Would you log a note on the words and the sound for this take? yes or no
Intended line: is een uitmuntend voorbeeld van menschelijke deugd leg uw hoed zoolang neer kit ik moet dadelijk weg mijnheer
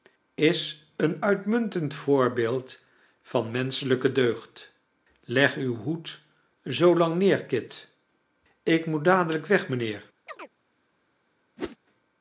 yes